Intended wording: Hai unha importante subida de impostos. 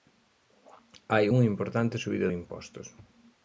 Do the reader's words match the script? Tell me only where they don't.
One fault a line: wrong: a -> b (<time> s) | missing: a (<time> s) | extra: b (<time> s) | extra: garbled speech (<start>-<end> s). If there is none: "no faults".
no faults